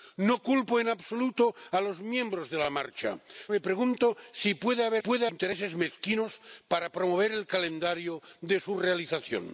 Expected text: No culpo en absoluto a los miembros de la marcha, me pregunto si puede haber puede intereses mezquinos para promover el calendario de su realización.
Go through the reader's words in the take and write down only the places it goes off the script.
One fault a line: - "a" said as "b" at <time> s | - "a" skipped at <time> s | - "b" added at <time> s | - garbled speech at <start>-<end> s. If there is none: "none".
none